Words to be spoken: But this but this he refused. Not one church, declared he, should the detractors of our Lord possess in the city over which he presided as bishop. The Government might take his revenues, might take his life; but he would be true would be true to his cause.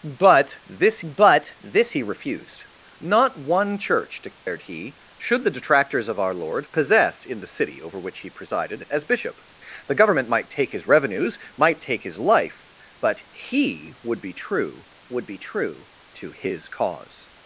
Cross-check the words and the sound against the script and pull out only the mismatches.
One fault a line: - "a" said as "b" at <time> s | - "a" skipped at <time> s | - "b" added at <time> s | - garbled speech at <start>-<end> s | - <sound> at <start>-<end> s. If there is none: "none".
- dropout at 4.3-4.5 s